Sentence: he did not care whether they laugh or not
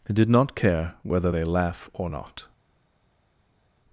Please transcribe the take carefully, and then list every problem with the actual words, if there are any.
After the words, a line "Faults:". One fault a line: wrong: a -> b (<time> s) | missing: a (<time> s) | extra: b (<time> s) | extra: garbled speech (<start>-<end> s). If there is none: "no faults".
he did not care whether they laugh or not
Faults:
no faults